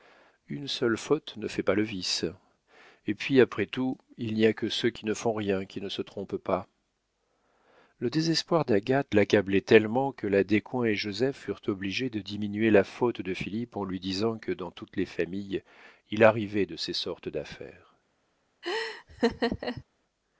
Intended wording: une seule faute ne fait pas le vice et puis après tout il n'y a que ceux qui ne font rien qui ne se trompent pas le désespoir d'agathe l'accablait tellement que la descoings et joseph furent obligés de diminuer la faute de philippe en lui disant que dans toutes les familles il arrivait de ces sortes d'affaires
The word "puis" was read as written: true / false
true